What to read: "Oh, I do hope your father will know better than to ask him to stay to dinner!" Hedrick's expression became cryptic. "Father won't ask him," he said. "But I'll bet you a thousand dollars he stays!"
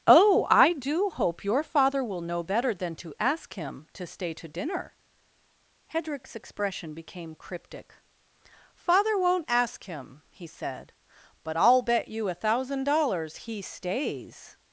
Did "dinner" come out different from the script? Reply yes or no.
no